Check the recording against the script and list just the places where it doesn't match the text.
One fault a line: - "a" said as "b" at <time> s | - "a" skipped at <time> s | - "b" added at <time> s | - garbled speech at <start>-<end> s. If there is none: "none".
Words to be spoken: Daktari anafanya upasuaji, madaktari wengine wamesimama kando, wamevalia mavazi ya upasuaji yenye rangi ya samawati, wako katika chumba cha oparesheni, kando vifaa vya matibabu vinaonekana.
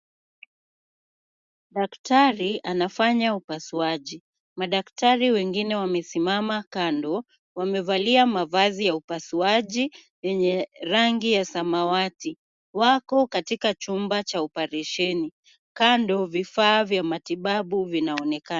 none